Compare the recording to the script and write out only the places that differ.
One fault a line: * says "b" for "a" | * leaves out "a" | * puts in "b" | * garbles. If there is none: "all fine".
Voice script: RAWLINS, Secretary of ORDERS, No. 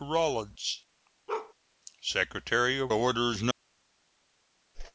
all fine